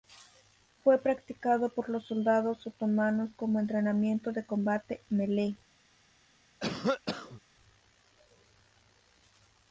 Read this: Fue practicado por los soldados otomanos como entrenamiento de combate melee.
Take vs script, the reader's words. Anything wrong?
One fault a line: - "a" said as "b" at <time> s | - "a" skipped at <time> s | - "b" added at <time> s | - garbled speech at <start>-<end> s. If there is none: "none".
none